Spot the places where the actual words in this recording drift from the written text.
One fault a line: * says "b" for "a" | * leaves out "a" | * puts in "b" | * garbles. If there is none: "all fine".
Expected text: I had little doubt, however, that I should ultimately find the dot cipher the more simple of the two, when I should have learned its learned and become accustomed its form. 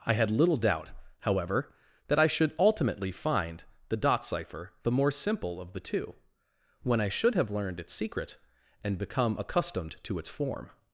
* says "secret" for "learned"
* puts in "to"